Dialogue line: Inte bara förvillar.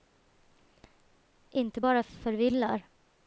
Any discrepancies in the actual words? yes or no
no